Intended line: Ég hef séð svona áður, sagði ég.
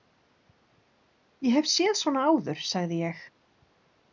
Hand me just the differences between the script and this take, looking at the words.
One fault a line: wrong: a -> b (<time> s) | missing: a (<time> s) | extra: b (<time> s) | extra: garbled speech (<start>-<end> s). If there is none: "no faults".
no faults